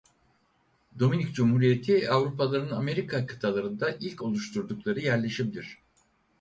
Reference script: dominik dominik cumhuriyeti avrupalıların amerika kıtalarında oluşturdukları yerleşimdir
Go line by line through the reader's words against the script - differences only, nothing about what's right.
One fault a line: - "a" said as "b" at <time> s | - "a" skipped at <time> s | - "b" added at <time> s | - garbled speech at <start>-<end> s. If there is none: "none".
- "dominik" skipped at 1.4 s
- "ilk" added at 4.0 s